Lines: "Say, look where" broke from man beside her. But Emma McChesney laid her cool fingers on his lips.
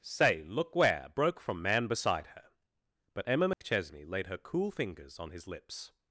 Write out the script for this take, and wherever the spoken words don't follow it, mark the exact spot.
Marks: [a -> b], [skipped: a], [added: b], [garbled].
"Say, look where" broke from man beside her. But Emma McChesney laid her cool fingers on his lips.